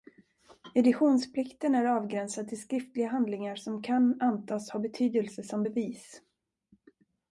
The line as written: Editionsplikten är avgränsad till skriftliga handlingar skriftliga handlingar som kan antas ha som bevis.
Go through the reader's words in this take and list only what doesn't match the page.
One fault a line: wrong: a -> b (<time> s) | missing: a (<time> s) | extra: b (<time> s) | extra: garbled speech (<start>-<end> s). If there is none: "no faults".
missing: skriftliga handlingar (3.5 s)
extra: betydelse (4.8 s)